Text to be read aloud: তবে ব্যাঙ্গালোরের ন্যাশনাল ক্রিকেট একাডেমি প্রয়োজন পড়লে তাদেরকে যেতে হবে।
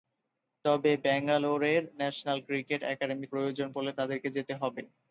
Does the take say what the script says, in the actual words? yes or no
yes